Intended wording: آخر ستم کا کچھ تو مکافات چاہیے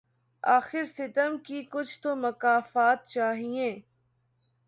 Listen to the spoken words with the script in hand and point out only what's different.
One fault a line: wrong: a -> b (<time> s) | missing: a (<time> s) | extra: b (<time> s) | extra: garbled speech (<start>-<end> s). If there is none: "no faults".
wrong: کا -> کی (1.4 s)